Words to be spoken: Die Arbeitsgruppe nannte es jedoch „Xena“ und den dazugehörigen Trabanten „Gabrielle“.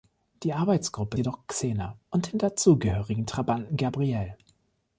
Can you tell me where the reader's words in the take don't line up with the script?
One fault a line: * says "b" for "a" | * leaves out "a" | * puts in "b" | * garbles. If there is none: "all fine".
* leaves out "nannte es"